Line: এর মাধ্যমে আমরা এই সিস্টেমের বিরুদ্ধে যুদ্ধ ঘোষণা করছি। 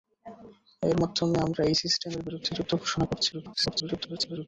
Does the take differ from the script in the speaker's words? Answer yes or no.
yes